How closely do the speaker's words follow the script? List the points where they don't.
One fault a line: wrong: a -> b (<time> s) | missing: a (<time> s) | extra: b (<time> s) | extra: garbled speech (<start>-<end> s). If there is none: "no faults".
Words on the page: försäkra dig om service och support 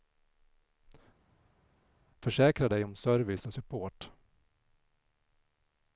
no faults